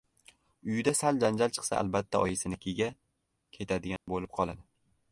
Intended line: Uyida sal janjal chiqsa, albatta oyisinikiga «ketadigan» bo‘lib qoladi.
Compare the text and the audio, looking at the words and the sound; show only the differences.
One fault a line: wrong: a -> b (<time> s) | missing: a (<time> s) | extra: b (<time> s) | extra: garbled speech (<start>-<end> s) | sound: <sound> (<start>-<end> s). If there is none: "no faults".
sound: dropout (4.0-4.1 s)